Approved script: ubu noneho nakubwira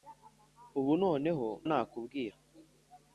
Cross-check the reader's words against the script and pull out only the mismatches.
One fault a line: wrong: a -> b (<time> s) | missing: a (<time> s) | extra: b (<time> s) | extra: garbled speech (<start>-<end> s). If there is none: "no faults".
no faults